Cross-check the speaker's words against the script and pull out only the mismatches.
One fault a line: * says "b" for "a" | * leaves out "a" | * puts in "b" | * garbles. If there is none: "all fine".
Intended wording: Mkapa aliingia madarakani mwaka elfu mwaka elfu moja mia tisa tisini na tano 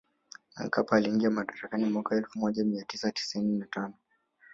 * leaves out "mwaka elfu"